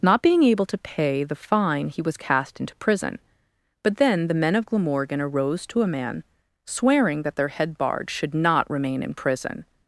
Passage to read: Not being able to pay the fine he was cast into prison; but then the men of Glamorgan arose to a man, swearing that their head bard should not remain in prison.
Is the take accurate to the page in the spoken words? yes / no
yes